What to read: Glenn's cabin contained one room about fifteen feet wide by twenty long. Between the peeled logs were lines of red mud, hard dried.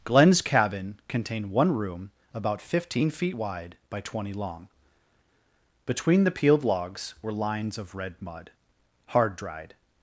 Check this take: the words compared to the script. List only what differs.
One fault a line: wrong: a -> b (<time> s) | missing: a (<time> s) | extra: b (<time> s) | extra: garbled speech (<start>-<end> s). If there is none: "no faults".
no faults